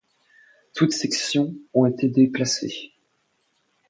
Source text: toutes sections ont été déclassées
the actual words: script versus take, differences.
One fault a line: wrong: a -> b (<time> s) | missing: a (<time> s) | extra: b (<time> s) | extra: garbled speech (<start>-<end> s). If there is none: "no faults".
no faults